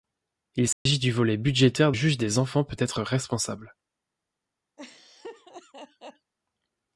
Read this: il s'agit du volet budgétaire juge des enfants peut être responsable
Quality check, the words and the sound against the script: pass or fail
fail